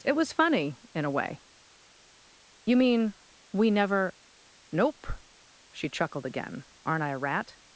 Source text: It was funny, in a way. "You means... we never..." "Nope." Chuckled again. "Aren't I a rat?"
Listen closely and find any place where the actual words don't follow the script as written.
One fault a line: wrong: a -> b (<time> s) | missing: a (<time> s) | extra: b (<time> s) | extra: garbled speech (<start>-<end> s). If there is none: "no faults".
wrong: means -> mean (2.8 s)
extra: She (5.7 s)